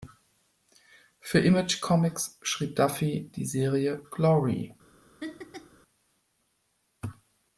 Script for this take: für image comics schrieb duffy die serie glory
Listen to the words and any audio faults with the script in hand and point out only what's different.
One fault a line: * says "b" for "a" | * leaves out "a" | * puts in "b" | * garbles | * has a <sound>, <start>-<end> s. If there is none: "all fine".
* has a laugh, 5.2-5.8 s